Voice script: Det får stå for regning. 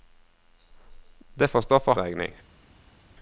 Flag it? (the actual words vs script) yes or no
no